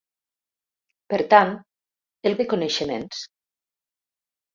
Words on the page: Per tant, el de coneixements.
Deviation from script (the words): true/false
false